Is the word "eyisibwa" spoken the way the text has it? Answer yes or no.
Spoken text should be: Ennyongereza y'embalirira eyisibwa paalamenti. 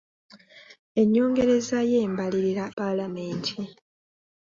no